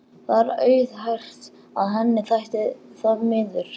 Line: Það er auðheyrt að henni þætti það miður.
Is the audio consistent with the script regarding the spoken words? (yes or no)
yes